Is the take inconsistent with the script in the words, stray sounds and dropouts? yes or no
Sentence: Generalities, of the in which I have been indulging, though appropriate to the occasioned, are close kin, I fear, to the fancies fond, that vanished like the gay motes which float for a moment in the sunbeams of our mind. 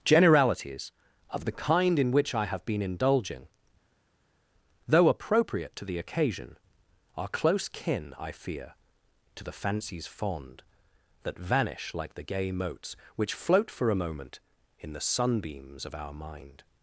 yes